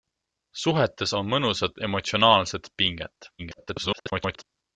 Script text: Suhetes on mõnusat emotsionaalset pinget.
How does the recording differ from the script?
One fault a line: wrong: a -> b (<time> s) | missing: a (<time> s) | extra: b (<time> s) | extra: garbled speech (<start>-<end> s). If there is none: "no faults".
extra: garbled speech (3.4-4.4 s)